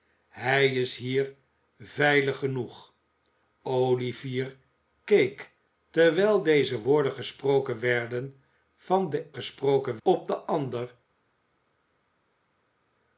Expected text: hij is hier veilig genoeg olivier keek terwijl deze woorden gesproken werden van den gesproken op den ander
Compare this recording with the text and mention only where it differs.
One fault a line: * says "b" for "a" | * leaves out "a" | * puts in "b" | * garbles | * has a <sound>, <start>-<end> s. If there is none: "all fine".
all fine